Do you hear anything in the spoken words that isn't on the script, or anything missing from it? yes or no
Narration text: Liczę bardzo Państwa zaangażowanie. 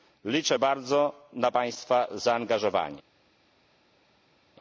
yes